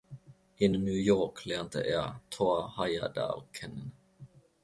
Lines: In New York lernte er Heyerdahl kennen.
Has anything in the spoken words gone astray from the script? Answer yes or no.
yes